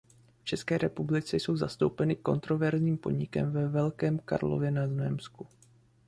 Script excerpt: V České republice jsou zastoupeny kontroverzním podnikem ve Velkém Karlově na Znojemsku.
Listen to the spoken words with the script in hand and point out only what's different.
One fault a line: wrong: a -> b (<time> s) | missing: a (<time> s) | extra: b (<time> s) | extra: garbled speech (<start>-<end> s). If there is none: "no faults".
no faults